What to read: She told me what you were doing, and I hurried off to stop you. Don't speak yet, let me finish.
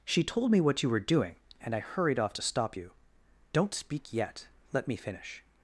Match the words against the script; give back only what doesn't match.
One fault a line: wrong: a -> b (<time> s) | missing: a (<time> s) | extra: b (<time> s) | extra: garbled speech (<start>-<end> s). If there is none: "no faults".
no faults